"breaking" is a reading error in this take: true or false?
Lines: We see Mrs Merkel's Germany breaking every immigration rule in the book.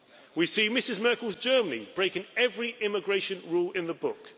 false